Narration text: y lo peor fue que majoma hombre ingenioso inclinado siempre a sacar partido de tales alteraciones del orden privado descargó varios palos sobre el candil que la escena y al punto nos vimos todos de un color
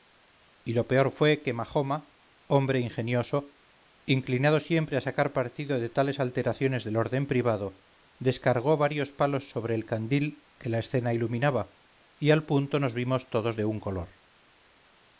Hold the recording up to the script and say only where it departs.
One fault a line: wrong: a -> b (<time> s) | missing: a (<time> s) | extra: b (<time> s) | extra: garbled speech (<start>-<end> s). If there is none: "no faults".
extra: iluminaba (11.1 s)